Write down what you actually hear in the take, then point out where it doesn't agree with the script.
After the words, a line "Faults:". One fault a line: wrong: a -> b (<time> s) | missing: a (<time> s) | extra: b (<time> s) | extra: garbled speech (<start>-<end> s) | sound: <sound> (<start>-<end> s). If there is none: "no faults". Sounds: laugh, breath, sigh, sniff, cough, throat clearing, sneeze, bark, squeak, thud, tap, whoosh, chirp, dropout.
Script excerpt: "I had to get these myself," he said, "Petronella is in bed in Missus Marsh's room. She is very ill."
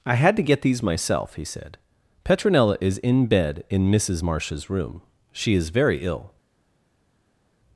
"I had to get these myself," he said, "Petronella is in bed in Missus Marsh's room. She is very ill."
Faults:
no faults